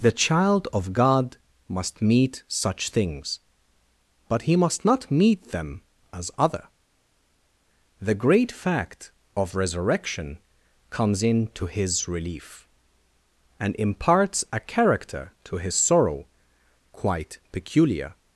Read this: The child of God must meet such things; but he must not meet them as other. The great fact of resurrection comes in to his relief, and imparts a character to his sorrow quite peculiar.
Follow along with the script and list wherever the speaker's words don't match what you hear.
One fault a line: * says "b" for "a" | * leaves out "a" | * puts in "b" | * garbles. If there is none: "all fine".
all fine